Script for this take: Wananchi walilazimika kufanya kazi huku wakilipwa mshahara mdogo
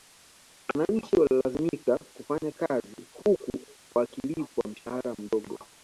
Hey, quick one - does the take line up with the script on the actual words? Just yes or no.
yes